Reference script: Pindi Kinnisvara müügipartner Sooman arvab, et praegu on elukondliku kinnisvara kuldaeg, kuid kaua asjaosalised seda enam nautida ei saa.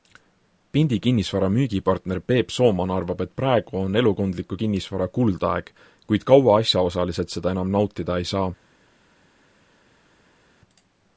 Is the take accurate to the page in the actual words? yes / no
no